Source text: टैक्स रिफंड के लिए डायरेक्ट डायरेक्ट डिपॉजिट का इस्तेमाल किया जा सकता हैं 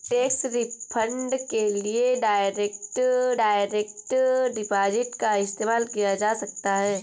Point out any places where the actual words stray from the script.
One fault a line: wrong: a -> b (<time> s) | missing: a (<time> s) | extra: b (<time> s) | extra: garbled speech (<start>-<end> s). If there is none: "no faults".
no faults